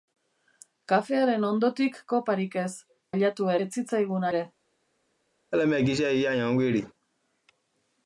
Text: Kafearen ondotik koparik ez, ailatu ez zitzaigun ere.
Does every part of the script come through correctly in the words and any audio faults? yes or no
no